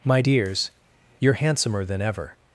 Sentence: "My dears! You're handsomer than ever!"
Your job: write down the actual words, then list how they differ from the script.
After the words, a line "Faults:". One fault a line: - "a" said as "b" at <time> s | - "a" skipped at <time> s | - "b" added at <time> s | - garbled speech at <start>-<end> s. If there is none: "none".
"My dears! You're handsomer than ever!"
Faults:
none